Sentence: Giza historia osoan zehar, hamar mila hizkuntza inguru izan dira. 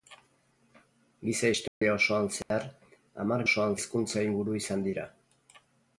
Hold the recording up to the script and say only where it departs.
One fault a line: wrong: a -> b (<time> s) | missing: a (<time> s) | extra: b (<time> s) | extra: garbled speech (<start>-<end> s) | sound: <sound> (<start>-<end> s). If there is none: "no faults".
sound: dropout (1.7-1.8 s)
sound: dropout (2.4-2.5 s)
wrong: mila -> osoan (3.4 s)